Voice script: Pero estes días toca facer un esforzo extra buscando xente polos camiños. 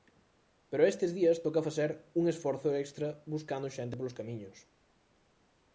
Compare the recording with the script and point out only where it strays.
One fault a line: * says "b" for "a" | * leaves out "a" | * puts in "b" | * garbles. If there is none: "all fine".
all fine